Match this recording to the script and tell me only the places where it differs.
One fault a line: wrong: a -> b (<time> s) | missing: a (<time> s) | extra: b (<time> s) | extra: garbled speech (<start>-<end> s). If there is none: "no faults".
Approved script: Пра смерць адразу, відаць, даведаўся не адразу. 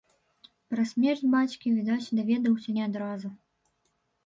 wrong: адразу -> бацькі (1.3 s)